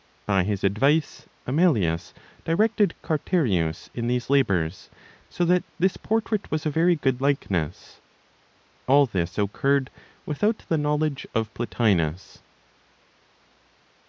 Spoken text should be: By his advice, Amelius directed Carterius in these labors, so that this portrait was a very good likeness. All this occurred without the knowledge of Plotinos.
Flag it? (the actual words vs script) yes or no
no